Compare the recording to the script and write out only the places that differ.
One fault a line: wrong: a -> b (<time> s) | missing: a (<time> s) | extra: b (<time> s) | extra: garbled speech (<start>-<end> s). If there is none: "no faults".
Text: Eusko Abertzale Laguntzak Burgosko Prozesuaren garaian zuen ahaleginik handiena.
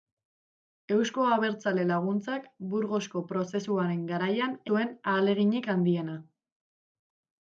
no faults